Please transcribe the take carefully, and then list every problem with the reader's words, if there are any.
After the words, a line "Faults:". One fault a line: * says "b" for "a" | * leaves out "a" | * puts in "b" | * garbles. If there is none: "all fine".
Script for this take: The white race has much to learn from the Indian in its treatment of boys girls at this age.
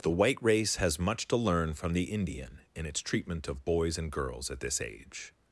The white race has much to learn from the Indian in its treatment of boys and girls at this age.
Faults:
* puts in "and"